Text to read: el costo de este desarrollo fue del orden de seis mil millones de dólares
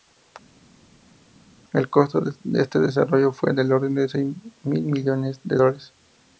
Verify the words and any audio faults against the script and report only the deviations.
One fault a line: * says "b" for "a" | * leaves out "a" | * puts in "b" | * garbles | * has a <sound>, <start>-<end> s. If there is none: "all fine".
all fine